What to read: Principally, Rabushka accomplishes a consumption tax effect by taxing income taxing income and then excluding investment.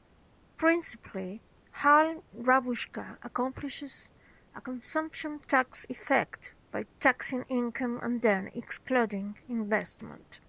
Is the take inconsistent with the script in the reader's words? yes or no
yes